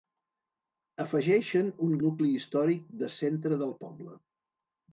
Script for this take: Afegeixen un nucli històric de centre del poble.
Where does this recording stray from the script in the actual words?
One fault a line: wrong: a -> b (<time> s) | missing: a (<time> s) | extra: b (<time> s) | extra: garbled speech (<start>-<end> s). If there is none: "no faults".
no faults